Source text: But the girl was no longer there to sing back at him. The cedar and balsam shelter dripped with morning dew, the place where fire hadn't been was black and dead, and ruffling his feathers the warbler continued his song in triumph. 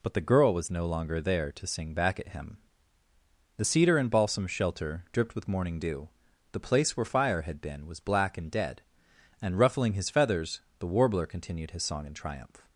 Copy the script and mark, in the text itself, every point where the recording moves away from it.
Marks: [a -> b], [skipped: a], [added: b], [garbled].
But the girl was no longer there to sing back at him. The cedar and balsam shelter dripped with morning dew, the place where fire [hadn't -> had] been was black and dead, and ruffling his feathers the warbler continued his song in triumph.